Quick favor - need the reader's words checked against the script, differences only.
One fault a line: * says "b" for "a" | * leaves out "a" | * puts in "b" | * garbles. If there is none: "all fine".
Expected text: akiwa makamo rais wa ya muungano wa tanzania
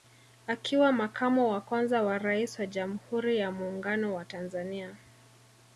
* puts in "wa kwanza wa"
* puts in "jamhuri"